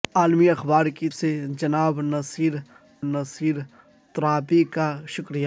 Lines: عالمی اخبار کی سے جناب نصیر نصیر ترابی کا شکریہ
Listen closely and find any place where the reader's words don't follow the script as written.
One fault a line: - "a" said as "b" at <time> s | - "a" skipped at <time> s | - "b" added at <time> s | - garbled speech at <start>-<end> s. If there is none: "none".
none